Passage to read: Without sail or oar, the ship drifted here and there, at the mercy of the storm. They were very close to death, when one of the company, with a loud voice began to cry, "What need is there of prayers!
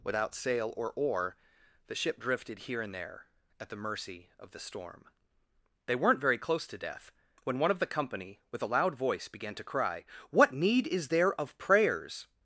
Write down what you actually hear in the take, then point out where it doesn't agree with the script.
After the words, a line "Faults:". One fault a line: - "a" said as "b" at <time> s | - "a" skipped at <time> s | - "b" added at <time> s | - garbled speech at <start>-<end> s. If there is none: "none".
Without sail or oar, the ship drifted here and there, at the mercy of the storm. They weren't very close to death, when one of the company, with a loud voice began to cry, "What need is there of prayers!
Faults:
- "were" said as "weren't" at 6.0 s